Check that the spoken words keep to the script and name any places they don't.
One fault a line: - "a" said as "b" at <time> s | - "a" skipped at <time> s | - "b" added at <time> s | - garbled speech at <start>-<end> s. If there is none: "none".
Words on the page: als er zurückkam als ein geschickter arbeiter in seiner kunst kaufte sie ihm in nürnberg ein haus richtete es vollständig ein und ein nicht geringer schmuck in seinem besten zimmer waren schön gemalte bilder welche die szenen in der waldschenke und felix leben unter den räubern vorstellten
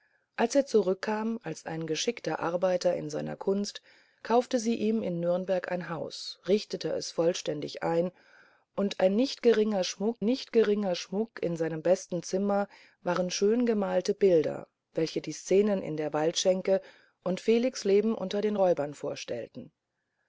- "nicht geringer schmuck" added at 10.2 s